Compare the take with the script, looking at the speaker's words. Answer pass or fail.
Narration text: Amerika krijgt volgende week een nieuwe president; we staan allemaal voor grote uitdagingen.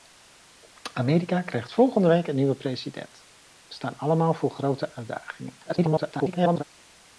fail